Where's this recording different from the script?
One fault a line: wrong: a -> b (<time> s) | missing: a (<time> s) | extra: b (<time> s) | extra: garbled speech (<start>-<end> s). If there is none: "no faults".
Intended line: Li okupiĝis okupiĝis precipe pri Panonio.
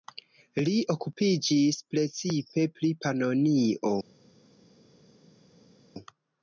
missing: okupiĝis (1.8 s)